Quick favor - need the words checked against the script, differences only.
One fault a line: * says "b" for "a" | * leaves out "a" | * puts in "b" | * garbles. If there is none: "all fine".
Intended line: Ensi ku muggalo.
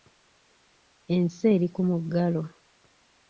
* puts in "eri"